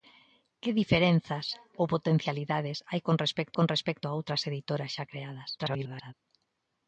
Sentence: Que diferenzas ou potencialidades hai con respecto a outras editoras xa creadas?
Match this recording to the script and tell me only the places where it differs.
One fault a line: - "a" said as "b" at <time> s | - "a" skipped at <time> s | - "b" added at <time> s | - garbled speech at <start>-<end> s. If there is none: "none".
- "con respecto" added at 3.6 s
- garbled speech at 5.6-6.1 s